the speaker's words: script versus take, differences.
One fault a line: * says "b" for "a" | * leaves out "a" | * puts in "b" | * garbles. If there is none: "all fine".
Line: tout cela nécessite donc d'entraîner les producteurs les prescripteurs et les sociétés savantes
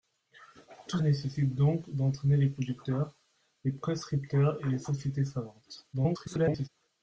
* leaves out "cela"
* garbles